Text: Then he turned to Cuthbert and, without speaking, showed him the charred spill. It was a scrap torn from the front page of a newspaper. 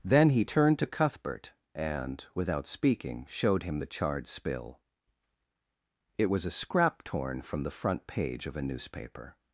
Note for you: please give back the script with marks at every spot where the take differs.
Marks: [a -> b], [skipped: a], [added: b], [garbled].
Then he turned to Cuthbert and, without speaking, showed him the charred spill. It was a scrap torn from the front page of a newspaper.